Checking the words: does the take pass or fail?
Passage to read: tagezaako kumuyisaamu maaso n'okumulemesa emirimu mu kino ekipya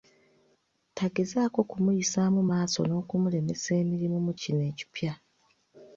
pass